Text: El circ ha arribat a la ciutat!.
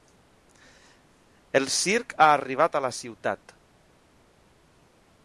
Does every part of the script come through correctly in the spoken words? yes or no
yes